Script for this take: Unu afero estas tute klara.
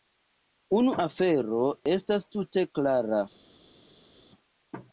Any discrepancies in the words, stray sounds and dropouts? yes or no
no